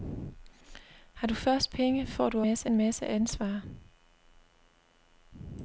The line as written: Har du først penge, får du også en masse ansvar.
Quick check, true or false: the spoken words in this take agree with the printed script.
false